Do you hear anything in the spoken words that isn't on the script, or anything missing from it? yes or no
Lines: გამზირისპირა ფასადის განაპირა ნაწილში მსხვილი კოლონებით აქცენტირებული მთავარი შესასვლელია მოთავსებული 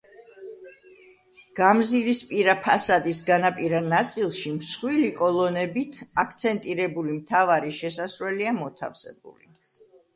no